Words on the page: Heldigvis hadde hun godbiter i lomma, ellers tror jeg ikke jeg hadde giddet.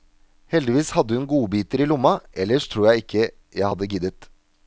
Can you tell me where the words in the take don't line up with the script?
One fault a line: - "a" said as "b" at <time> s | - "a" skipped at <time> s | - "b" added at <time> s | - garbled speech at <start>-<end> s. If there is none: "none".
none